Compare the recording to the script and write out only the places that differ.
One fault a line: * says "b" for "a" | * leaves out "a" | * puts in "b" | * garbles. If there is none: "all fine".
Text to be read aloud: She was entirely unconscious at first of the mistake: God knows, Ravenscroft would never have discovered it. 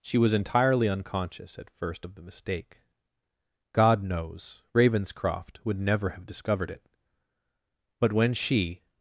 * puts in "But when she"